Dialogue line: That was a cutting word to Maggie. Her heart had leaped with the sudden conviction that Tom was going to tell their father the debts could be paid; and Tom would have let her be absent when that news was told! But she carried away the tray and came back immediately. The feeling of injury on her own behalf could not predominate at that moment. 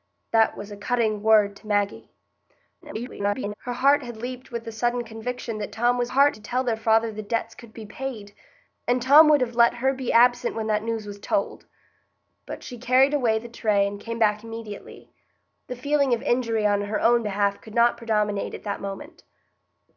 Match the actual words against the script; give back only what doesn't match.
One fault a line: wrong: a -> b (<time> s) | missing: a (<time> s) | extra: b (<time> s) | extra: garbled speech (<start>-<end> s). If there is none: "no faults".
extra: garbled speech (2.8-3.5 s)
wrong: going -> heart (6.1 s)